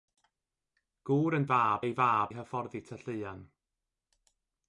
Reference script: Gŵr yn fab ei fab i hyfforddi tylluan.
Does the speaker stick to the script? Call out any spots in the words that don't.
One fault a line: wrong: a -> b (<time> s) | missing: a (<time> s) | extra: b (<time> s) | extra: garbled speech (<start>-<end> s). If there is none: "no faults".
no faults